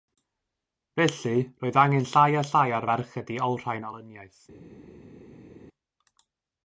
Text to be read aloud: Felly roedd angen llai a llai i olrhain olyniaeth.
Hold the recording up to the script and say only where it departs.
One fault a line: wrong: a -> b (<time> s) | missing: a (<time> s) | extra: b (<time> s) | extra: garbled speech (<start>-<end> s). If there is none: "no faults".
extra: ar ferched (2.8 s)